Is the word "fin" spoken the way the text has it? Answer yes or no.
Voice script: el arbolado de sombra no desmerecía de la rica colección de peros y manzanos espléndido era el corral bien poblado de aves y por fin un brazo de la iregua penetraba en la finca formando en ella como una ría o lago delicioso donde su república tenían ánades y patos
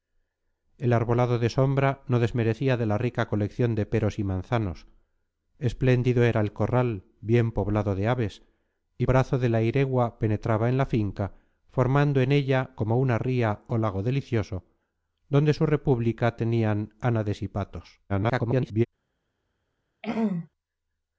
no